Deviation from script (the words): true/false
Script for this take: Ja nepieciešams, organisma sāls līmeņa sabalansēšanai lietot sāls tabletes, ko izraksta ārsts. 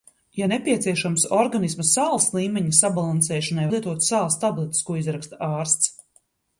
false